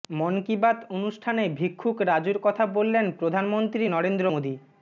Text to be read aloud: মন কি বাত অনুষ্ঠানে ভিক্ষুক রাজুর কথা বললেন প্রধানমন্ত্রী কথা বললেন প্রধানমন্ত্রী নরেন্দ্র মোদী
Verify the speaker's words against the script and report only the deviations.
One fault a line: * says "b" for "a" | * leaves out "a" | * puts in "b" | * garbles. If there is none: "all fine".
* leaves out "কথা বললেন প্রধানমন্ত্রী"